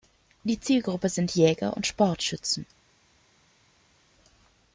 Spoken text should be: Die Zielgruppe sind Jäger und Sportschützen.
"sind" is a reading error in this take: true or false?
false